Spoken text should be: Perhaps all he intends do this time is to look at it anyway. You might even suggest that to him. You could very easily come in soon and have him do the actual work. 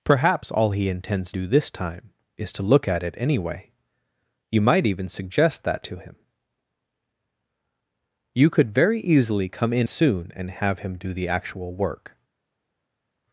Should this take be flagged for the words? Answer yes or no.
no